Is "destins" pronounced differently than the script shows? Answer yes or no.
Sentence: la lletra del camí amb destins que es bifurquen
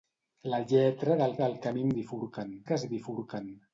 yes